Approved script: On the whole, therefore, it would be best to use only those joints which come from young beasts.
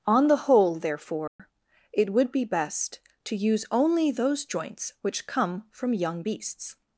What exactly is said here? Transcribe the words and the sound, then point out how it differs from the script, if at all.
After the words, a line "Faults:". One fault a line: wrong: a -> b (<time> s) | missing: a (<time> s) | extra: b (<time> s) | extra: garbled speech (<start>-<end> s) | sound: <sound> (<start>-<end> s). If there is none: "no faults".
On the whole, therefore, it would be best to use only those joints which come from young beasts.
Faults:
sound: dropout (1.3-1.4 s)